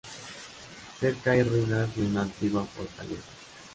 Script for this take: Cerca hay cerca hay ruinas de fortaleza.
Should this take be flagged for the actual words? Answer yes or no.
yes